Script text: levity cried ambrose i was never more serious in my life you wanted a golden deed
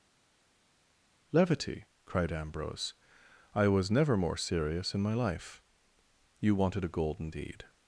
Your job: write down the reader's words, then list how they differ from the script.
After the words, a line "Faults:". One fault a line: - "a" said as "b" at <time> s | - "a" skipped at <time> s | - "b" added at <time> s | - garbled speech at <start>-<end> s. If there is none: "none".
levity cried ambrose i was never more serious in my life you wanted a golden deed
Faults:
none